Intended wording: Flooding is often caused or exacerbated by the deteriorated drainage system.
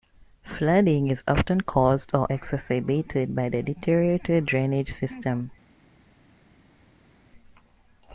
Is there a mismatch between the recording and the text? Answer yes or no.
no